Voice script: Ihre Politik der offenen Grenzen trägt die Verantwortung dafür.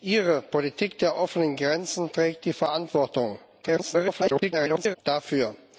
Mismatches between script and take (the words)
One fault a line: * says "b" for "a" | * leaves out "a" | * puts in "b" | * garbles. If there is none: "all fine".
* garbles